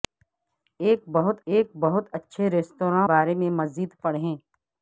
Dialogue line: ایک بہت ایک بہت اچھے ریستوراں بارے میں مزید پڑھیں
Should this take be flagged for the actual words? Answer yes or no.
no